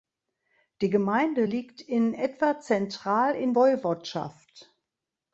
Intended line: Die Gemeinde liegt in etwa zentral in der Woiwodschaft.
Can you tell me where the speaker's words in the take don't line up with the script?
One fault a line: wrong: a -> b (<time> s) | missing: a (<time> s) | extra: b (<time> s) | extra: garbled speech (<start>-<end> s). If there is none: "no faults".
missing: der (3.5 s)